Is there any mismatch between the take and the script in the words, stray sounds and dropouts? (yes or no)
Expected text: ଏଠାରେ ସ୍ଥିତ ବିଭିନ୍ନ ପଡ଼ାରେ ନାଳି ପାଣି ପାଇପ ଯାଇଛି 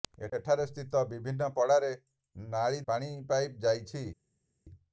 no